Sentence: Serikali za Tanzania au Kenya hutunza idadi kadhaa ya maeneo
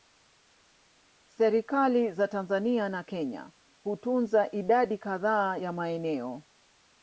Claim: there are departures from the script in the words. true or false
true